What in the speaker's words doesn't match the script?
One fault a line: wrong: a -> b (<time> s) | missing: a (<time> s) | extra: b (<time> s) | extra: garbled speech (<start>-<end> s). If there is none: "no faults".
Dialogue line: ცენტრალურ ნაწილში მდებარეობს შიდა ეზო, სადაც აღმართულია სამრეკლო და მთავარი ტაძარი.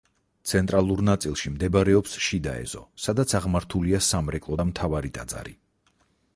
no faults